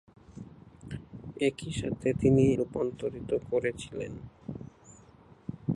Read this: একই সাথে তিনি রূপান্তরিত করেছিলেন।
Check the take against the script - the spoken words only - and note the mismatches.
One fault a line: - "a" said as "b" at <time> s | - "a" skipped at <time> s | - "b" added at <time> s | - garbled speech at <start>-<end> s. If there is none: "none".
none